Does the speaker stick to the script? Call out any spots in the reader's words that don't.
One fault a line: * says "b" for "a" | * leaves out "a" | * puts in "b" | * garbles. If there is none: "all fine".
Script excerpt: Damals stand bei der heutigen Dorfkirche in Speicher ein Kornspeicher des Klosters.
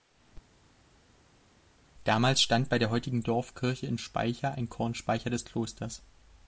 all fine